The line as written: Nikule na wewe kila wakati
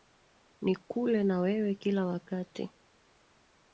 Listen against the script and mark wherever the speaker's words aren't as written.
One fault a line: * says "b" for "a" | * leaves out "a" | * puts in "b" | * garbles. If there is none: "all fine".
all fine